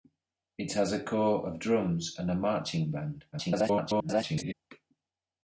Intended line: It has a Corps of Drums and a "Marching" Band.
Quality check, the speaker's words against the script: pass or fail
fail